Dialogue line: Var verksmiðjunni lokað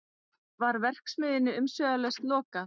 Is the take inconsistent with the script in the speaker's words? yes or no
yes